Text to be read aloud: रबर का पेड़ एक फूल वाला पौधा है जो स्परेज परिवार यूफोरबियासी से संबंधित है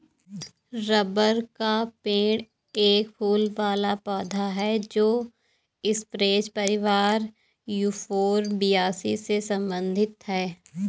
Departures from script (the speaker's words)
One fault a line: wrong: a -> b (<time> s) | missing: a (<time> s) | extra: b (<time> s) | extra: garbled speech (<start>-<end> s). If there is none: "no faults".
no faults